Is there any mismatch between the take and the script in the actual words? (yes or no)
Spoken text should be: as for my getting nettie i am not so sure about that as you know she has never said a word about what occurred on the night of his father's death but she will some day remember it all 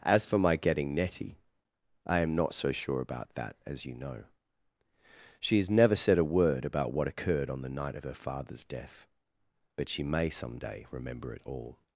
yes